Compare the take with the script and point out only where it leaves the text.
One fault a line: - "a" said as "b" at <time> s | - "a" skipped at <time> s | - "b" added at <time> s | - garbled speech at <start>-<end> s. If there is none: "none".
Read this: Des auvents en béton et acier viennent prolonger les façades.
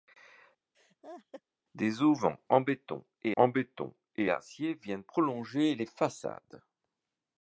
- "en béton et" added at 3.3 s